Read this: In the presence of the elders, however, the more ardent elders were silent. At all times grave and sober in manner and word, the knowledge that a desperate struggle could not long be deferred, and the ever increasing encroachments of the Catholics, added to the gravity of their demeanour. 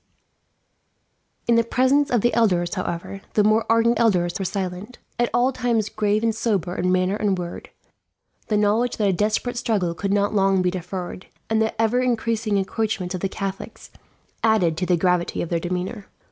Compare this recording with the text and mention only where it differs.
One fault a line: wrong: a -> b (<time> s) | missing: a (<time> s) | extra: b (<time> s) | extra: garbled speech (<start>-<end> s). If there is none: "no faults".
no faults